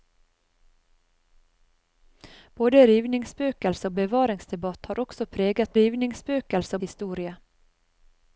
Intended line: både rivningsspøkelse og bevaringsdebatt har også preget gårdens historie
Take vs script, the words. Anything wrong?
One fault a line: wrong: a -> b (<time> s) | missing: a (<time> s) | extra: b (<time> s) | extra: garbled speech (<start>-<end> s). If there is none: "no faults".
wrong: gårdens -> rivningsspøkelse (5.8 s)